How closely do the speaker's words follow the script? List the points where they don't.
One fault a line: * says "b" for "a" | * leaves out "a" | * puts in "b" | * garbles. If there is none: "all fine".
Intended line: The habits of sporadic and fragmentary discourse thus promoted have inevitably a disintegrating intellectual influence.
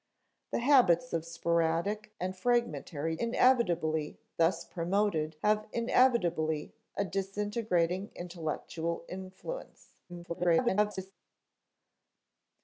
* says "inevitably" for "discourse"
* garbles